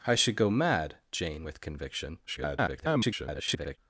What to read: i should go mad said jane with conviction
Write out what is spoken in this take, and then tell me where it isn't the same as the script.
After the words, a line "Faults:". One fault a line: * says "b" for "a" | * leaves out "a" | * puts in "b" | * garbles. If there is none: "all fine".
i should go mad jane with conviction [garbled]
Faults:
* leaves out "said"
* garbles